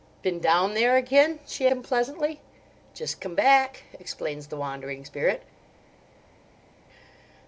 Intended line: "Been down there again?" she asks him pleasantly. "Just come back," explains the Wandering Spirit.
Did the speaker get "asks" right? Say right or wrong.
wrong